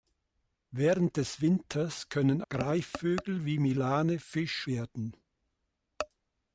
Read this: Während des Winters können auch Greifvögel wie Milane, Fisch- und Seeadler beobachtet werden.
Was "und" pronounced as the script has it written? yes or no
no